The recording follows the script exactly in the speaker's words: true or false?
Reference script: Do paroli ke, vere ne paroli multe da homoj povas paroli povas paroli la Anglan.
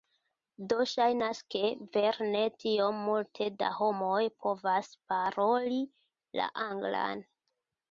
false